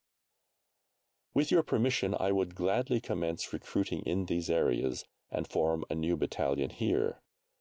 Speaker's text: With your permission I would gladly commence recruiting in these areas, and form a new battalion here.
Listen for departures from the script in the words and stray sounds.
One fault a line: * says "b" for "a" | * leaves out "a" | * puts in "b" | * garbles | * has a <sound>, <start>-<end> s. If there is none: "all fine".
all fine